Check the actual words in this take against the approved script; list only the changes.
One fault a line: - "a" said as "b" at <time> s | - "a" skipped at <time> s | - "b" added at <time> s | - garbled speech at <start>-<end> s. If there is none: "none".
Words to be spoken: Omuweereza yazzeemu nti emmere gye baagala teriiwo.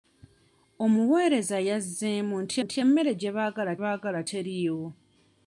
- "nti" added at 2.6 s
- "baagala" added at 3.8 s